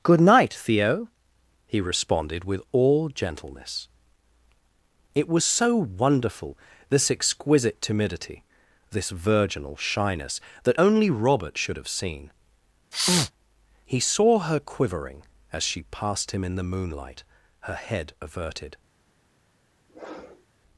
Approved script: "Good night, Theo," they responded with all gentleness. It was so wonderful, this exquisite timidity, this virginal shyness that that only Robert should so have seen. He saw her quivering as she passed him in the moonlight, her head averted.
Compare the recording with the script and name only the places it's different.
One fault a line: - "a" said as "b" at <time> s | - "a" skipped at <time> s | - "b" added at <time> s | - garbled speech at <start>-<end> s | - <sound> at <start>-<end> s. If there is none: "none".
- "they" said as "he" at 1.7 s
- "that" skipped at 10.8 s
- "so" skipped at 11.8 s
- sneeze at 12.9-13.3 s
- sniff at 19.9-20.5 s